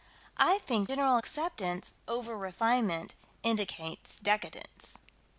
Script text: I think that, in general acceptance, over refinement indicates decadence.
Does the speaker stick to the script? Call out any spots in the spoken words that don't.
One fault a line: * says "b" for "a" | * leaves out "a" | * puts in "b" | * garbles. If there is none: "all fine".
* leaves out "that in"